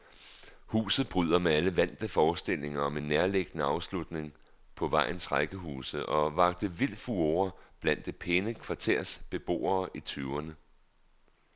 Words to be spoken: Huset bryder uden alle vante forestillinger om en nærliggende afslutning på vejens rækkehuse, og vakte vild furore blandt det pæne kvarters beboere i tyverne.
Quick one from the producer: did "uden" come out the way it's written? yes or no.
no